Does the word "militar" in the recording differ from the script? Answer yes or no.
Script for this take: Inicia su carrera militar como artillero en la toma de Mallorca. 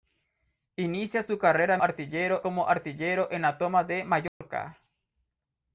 yes